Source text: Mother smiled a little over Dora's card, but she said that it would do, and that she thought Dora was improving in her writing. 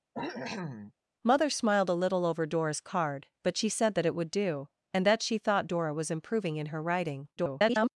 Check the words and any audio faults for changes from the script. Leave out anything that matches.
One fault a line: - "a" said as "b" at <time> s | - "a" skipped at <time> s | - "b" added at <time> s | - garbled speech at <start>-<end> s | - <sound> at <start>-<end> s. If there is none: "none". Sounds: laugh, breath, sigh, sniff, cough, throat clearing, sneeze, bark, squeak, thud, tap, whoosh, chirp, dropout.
- cough at 0.1-0.9 s
- garbled speech at 7.4-7.9 s